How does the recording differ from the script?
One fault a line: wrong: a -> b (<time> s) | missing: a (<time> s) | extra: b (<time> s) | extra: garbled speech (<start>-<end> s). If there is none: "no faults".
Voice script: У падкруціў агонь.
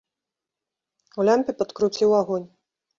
extra: лямпе (1.3 s)